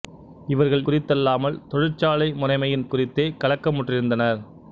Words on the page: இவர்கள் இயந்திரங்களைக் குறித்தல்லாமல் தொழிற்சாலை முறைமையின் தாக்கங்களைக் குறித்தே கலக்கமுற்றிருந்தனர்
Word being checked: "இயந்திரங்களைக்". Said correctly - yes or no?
no